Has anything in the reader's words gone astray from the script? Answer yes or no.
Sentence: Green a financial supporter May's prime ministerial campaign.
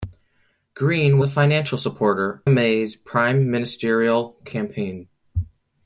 no